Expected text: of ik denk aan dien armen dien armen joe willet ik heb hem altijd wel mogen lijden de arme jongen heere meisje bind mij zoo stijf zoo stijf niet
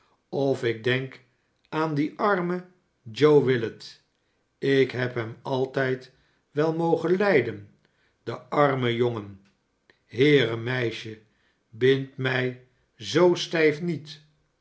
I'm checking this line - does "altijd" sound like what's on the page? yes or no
yes